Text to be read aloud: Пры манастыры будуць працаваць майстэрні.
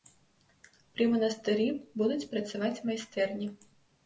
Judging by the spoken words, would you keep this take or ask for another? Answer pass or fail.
pass